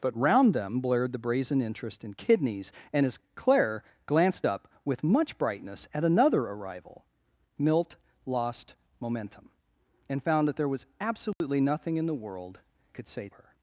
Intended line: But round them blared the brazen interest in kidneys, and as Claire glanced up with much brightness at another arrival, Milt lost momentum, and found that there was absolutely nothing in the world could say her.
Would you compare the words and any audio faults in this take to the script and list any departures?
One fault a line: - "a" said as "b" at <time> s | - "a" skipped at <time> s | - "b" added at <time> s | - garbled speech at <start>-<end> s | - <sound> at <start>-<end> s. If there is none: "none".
- dropout at 11.3-11.4 s